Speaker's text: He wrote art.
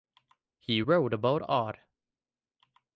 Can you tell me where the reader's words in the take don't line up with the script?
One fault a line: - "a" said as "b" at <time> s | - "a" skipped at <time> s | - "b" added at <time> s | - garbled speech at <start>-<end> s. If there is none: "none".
- "about" added at 1.1 s